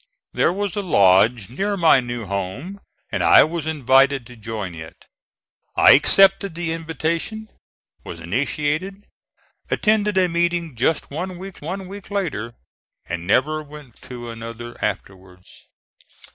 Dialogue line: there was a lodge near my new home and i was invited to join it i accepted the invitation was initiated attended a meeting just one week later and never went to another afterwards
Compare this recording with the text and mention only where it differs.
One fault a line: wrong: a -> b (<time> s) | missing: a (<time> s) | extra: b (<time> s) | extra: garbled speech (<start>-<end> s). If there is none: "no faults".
extra: one week (11.6 s)